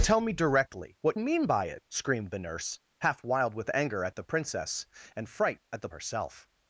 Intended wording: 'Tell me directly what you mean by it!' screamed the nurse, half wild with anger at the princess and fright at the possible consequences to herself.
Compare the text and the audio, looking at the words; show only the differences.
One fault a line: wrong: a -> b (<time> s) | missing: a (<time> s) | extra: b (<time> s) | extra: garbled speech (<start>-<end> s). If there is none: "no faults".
missing: you (1.2 s)
missing: possible consequences to (5.9 s)